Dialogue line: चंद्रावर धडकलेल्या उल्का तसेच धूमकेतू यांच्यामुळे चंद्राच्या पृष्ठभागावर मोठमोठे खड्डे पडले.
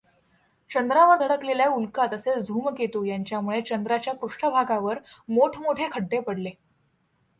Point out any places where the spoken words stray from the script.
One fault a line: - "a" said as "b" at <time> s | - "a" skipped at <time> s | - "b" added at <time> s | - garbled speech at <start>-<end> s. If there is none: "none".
none